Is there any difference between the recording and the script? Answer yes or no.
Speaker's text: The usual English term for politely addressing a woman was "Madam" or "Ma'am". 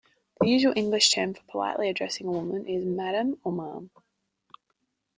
yes